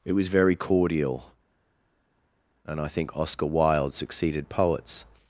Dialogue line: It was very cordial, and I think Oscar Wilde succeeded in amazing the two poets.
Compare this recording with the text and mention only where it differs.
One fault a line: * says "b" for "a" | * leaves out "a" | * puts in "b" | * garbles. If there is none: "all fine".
* leaves out "in amazing the two"